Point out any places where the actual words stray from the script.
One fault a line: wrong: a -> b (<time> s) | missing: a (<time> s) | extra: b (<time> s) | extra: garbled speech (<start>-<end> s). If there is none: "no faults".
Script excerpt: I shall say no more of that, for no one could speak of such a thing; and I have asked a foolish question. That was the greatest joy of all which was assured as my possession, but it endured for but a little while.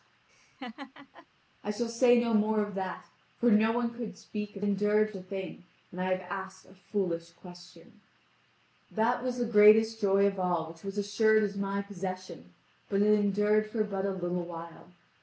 wrong: such -> endured (4.6 s)